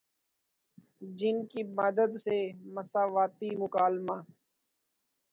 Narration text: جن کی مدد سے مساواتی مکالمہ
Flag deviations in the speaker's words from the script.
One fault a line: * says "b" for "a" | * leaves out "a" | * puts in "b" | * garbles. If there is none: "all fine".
all fine